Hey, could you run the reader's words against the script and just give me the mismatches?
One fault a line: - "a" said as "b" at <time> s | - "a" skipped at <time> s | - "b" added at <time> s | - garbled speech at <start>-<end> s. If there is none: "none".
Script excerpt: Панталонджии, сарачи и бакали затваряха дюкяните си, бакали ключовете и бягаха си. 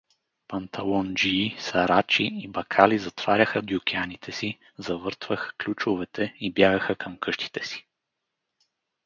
- "бакали" said as "завъртваха" at 4.8 s
- "към къщите" added at 7.0 s